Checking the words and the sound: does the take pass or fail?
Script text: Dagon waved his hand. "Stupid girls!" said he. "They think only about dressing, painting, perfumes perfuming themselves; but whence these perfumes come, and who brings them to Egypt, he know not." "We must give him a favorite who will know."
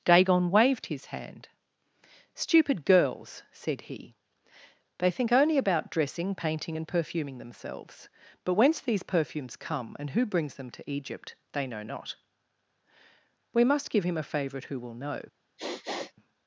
fail